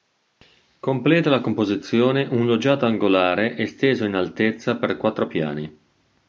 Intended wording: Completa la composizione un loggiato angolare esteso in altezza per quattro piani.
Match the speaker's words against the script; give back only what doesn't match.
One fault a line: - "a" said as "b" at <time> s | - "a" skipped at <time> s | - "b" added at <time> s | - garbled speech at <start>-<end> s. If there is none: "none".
none